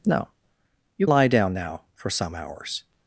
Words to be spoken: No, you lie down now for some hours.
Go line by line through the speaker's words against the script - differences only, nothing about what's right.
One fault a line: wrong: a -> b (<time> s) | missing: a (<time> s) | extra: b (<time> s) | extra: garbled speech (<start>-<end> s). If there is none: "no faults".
no faults